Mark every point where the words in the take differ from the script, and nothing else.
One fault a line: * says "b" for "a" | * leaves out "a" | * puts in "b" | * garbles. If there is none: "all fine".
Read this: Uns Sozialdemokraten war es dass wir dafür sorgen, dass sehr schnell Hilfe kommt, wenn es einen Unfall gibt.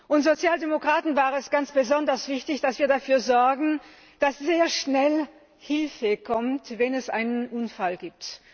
* puts in "ganz besonders wichtig"